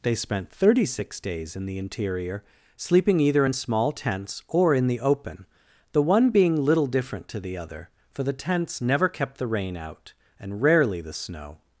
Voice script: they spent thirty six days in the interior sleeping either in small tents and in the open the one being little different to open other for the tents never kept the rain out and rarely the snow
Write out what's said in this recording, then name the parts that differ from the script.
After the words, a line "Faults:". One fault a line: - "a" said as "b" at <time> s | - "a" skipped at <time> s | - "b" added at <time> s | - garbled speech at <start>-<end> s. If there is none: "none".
they spent thirty six days in the interior sleeping either in small tents or in the open the one being little different to the other for the tents never kept the rain out and rarely the snow
Faults:
- "and" said as "or" at 4.5 s
- "open" said as "the" at 7.4 s